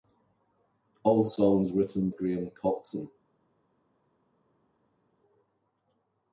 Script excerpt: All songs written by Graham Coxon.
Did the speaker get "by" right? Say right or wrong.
wrong